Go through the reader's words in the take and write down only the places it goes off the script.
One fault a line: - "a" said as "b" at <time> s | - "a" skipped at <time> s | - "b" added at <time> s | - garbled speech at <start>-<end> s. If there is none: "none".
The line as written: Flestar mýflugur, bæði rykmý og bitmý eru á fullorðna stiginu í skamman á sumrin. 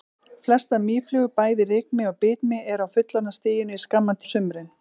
none